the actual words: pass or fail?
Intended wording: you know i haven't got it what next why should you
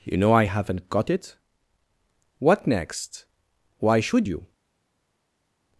pass